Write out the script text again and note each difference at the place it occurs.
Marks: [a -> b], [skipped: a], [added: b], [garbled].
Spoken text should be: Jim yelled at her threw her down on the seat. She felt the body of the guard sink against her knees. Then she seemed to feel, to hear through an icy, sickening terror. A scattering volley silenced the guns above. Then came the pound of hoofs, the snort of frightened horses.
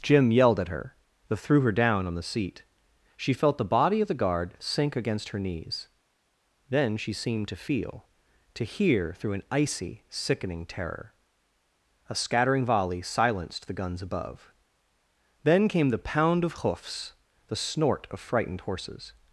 Jim yelled at her [added: then] threw her down on the seat. She felt the body of the guard sink against her knees. Then she seemed to feel, to hear through an icy, sickening terror. A scattering volley silenced the guns above. Then came the pound of hoofs, the snort of frightened horses.